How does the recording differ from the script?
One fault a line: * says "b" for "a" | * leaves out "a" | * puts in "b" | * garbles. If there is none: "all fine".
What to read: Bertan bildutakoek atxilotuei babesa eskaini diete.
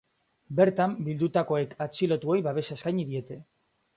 all fine